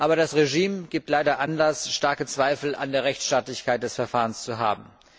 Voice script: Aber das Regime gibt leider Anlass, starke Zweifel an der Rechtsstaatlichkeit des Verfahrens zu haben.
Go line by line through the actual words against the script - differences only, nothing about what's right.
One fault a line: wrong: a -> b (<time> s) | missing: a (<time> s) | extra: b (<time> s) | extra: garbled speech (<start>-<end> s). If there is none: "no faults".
no faults